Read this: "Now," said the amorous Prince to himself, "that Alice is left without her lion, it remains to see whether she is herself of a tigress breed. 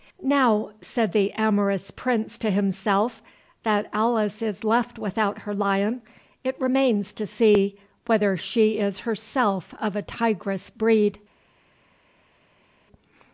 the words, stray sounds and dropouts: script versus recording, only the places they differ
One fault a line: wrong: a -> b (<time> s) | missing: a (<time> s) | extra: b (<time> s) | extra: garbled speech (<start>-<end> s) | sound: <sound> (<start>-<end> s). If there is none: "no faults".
no faults